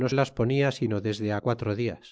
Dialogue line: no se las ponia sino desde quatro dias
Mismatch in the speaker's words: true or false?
true